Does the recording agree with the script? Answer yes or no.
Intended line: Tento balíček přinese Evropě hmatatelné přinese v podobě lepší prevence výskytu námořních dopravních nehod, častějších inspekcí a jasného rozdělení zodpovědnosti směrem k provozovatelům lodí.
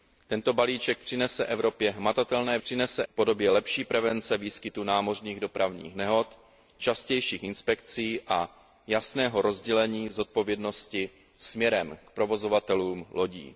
yes